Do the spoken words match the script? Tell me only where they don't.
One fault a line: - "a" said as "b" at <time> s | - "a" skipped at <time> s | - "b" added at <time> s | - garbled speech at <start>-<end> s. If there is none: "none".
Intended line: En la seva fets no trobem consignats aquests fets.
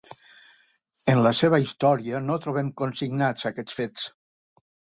- "fets" said as "història" at 1.6 s